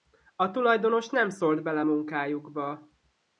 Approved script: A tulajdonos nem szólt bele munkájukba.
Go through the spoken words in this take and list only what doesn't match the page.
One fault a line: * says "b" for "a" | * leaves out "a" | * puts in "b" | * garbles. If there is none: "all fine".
all fine